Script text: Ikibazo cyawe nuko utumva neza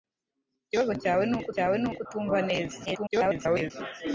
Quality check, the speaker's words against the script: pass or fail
fail